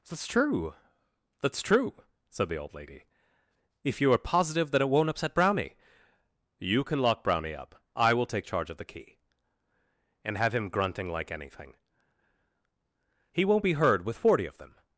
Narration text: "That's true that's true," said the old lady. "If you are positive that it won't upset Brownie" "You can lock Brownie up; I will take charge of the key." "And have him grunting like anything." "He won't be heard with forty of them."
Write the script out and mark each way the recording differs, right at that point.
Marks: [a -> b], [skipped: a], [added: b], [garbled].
"That's true that's true," said the old lady. "If you are positive that it won't upset Brownie" "You can lock Brownie up; I will take charge of the key." "And have him grunting like anything." "He won't be heard with forty of them."